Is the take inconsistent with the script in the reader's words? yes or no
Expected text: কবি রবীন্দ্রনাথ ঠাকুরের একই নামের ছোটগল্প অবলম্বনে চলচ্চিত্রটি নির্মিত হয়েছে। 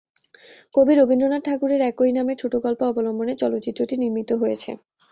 no